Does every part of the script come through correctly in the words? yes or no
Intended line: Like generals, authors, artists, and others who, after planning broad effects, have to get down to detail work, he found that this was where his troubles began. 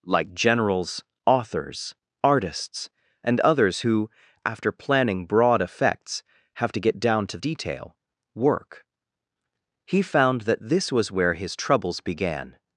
yes